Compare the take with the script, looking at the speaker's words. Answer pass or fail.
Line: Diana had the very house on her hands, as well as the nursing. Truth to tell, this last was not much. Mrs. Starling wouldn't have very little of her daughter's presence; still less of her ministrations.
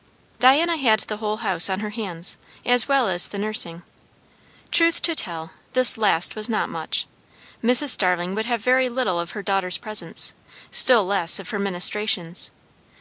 fail